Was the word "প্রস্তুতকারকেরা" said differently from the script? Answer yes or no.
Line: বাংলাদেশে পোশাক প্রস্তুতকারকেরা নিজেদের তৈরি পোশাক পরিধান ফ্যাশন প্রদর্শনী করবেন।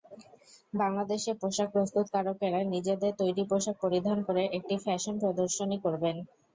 no